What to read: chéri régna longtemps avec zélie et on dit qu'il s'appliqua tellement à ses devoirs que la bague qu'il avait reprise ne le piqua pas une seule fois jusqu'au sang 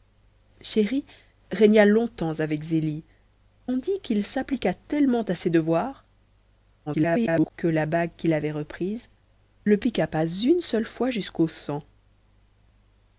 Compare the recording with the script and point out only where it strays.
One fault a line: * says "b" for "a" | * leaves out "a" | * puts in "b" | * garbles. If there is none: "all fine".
* leaves out "et"
* garbles
* leaves out "ne"